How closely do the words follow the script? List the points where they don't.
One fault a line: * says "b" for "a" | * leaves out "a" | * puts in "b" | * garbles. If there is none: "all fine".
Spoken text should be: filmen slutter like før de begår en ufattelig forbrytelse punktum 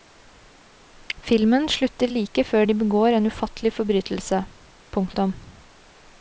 all fine